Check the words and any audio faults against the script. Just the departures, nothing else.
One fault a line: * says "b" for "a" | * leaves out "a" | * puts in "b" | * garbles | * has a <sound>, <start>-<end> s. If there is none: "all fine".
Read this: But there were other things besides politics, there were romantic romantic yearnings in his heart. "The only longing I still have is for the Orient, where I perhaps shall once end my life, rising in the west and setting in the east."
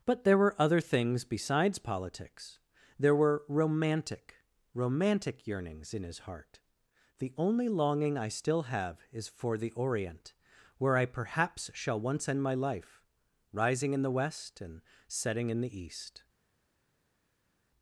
all fine